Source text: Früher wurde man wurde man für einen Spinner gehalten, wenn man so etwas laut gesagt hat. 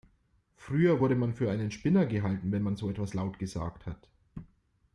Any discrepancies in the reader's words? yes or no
yes